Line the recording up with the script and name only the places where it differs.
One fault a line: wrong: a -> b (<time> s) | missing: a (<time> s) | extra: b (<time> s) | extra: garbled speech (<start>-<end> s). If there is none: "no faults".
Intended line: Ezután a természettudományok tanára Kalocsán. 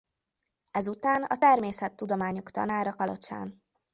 no faults